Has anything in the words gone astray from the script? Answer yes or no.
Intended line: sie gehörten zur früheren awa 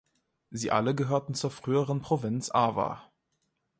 yes